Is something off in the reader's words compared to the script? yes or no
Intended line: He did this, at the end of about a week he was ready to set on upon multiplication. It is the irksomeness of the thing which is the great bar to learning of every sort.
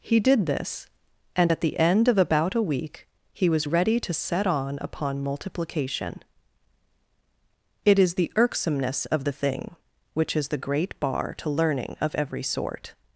yes